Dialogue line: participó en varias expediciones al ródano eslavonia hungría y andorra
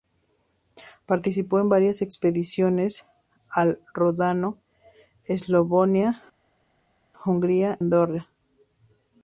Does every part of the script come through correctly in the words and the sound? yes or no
no